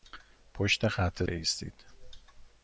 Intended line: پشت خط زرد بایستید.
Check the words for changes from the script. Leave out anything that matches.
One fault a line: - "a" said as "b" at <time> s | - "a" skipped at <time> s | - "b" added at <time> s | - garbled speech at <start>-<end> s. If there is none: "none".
- "زرد" skipped at 1.2 s